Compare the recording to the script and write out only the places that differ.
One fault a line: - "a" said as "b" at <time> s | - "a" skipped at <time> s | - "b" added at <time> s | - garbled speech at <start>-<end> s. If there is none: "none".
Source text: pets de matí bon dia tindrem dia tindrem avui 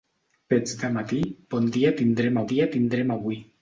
none